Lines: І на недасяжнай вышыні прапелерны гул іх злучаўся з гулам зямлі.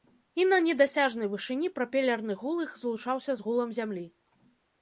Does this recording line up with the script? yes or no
yes